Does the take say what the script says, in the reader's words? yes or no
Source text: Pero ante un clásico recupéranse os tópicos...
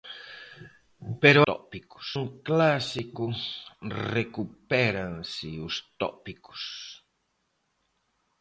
no